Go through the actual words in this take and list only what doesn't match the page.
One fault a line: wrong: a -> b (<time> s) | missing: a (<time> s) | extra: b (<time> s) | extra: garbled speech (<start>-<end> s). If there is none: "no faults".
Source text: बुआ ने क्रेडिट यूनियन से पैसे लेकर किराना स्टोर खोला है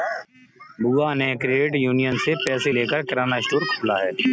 no faults